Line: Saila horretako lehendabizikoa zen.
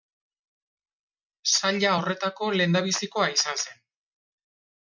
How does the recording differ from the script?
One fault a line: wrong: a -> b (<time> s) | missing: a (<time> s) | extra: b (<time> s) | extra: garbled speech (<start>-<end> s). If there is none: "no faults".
extra: izan (3.4 s)